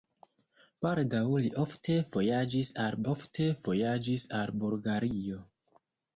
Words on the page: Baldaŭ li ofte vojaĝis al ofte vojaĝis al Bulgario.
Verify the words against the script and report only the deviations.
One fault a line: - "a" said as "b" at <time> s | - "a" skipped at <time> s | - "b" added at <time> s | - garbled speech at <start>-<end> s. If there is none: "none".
none